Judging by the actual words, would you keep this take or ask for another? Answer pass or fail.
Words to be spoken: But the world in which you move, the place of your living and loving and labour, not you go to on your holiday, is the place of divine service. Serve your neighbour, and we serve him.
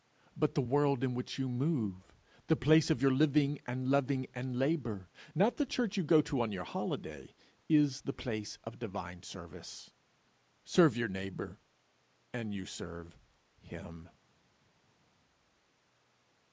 fail